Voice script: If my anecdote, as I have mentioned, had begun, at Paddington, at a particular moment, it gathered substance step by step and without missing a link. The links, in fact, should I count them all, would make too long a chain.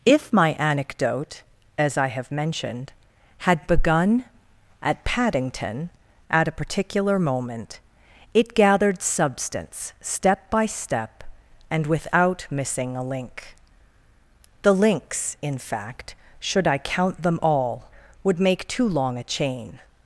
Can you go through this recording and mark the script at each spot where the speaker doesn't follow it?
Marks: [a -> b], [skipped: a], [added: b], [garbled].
If my anecdote, as I have mentioned, had begun, at Paddington, at a particular moment, it gathered substance step by step and without missing a link. The links, in fact, should I count them all, would make too long a chain.